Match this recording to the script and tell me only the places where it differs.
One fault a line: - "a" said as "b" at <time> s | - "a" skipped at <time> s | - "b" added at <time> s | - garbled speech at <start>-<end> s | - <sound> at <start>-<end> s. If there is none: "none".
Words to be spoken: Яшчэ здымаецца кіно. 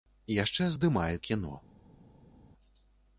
none